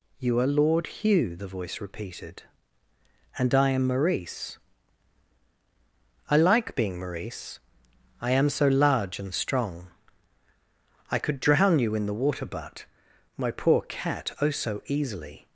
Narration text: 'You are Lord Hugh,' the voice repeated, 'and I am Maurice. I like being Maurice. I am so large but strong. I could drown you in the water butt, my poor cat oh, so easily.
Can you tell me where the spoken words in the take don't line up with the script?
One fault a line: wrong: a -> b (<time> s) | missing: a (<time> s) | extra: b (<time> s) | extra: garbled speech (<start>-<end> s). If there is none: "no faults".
wrong: but -> and (9.2 s)